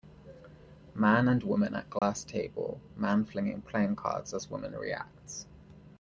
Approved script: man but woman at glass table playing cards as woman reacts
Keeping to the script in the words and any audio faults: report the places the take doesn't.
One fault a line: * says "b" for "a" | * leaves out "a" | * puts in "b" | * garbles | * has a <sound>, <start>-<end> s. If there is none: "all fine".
* says "and" for "but"
* has a dropout, 2.0-2.0 s
* puts in "man flinging"